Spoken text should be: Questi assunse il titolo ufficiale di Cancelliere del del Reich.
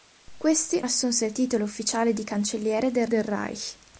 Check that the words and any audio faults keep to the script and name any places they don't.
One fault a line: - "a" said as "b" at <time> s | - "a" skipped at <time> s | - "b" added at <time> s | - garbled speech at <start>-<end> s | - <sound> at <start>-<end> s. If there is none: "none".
none